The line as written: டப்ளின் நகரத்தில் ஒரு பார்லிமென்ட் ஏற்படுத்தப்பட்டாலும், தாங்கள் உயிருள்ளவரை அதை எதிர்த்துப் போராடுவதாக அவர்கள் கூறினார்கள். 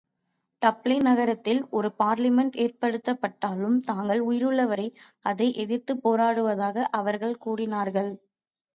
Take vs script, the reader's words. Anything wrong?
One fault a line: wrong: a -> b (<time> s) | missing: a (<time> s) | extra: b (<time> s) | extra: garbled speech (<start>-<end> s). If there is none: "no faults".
no faults